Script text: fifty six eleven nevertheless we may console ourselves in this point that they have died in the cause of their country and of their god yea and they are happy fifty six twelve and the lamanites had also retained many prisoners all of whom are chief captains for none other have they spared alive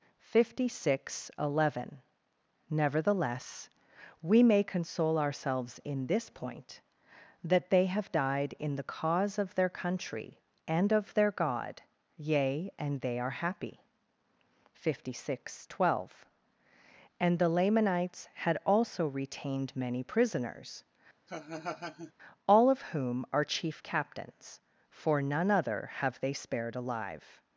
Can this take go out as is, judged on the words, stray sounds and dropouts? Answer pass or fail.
fail